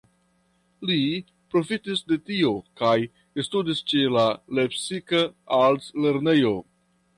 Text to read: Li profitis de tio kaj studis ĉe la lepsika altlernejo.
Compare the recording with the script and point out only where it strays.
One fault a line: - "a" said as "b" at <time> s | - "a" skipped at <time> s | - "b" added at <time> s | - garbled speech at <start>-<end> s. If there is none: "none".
none